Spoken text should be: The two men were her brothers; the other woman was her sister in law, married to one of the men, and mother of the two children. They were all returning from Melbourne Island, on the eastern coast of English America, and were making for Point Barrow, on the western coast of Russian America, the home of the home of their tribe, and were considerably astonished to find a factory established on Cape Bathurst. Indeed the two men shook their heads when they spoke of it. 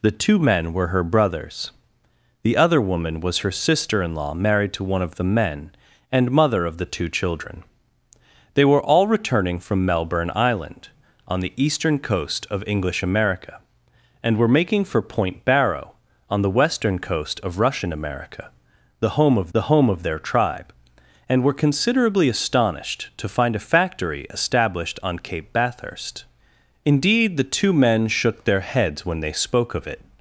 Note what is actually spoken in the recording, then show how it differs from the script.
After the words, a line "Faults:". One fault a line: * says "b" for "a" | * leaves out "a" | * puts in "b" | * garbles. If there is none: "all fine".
The two men were her brothers; the other woman was her sister in law, married to one of the men, and mother of the two children. They were all returning from Melbourne Island, on the eastern coast of English America, and were making for Point Barrow, on the western coast of Russian America, the home of the home of their tribe, and were considerably astonished to find a factory established on Cape Bathurst. Indeed the two men shook their heads when they spoke of it.
Faults:
all fine